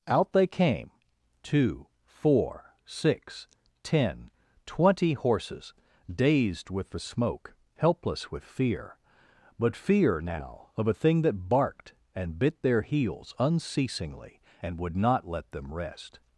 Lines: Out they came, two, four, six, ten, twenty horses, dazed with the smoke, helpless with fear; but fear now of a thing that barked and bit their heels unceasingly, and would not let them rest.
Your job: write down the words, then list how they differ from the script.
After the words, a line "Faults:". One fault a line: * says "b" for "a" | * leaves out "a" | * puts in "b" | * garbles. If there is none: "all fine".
Out they came, two, four, six, ten, twenty horses, dazed with the smoke, helpless with fear; but fear now of a thing that barked and bit their heels unceasingly, and would not let them rest.
Faults:
all fine